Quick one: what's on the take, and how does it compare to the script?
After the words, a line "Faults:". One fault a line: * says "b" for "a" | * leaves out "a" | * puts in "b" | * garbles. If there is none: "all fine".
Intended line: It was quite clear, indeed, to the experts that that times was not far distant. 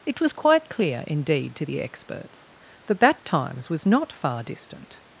It was quite clear, indeed, to the experts that that times was not far distant.
Faults:
all fine